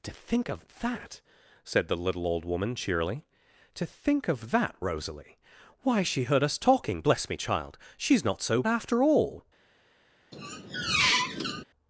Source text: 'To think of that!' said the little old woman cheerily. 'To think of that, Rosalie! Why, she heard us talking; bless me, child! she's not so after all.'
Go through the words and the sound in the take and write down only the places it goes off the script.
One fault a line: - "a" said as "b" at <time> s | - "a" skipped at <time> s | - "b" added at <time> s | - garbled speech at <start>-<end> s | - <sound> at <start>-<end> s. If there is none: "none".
- squeak at 10.3-11.6 s